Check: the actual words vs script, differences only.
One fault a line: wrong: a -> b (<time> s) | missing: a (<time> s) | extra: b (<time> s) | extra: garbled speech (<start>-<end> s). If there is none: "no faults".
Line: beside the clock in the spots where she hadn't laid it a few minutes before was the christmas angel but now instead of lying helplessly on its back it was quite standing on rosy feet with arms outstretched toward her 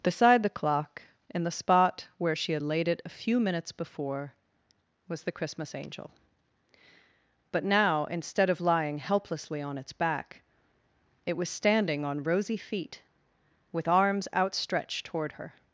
wrong: spots -> spot (1.5 s)
wrong: hadn't -> had (2.5 s)
missing: quite (11.5 s)